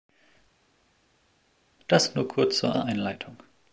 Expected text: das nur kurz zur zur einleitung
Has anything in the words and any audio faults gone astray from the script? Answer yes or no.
no